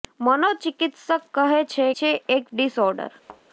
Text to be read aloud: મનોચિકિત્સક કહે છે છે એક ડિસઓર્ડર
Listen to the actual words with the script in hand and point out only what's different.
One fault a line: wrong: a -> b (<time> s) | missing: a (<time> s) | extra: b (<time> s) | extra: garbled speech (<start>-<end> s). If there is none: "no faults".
no faults